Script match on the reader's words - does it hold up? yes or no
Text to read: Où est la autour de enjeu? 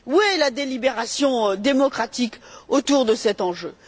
no